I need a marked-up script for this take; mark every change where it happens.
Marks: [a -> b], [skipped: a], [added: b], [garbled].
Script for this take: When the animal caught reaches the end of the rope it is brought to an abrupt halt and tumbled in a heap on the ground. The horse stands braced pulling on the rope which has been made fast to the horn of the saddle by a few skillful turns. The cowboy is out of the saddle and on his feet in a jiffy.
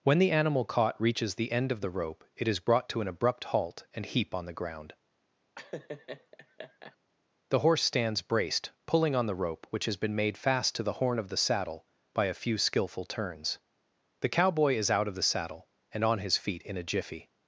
When the animal caught reaches the end of the rope it is brought to an abrupt halt and [skipped: tumbled in a] heap on the ground. The horse stands braced pulling on the rope which has been made fast to the horn of the saddle by a few skillful turns. The cowboy is out of the saddle and on his feet in a jiffy.